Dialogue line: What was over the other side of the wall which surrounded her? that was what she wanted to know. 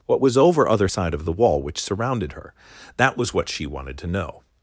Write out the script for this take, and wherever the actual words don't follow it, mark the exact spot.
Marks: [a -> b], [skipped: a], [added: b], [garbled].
What was over [skipped: the] other side of the wall which surrounded her? that was what she wanted to know.